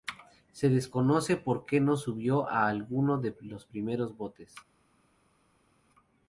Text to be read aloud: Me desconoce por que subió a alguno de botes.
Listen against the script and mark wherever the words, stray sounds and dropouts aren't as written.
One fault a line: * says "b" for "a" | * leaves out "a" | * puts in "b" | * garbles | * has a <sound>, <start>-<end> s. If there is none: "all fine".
* says "Se" for "Me"
* puts in "no"
* puts in "los primeros"